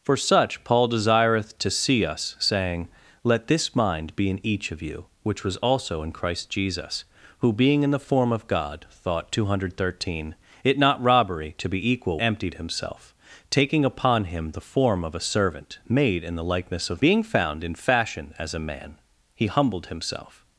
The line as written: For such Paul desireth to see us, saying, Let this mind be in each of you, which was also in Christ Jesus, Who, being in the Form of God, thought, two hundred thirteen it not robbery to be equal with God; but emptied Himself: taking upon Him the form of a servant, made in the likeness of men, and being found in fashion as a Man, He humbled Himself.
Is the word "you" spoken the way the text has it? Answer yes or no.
yes